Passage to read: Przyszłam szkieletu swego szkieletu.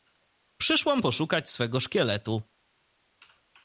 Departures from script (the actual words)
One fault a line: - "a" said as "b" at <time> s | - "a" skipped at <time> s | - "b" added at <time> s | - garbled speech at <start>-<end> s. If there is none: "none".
- "szkieletu" said as "poszukać" at 1.0 s